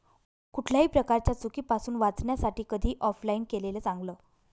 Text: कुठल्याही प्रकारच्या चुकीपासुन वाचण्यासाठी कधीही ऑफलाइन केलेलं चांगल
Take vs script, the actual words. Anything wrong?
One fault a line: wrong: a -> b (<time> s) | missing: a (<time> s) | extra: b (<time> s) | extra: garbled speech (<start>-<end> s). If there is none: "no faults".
no faults